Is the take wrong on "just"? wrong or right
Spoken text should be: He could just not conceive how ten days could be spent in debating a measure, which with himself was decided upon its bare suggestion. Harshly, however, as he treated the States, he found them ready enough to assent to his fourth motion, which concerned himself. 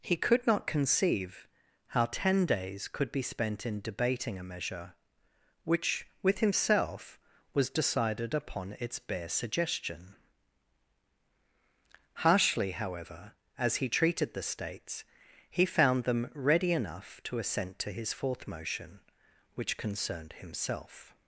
wrong